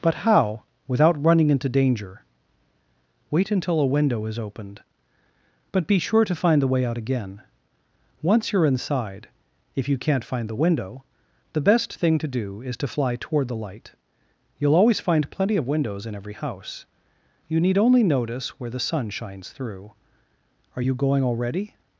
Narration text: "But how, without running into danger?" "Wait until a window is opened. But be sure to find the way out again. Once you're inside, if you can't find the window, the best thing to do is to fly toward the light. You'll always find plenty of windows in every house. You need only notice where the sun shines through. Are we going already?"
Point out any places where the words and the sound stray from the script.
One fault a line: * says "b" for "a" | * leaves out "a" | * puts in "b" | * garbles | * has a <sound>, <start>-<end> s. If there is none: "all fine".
* says "you" for "we"